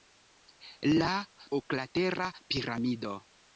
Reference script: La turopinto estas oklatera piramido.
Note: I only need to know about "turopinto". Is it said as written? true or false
false